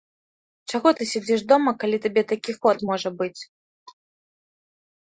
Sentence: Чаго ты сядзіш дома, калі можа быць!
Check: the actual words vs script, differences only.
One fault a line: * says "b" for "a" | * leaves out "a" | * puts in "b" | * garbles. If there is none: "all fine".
* puts in "табе такі ход"